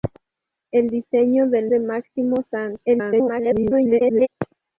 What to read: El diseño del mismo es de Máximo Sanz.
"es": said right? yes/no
no